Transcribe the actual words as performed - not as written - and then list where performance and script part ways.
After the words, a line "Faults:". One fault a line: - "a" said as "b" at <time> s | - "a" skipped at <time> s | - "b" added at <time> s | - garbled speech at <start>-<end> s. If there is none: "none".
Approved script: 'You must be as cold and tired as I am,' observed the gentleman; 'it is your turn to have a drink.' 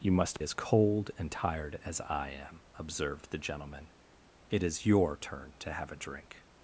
'You must as cold and tired as I am,' observed the gentleman; 'it is your turn to have a drink.'
Faults:
- "be" skipped at 0.4 s